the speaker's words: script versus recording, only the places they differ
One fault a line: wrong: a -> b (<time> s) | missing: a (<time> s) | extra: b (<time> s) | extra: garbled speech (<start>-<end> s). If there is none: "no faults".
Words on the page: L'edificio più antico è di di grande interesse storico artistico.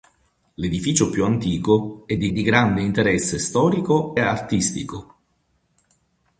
no faults